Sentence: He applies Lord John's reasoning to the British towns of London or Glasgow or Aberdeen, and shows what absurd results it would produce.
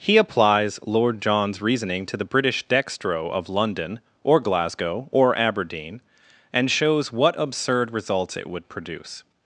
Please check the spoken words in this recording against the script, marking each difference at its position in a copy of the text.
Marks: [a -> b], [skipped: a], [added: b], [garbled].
He applies Lord John's reasoning to the British [towns -> dextro] of London or Glasgow or Aberdeen, and shows what absurd results it would produce.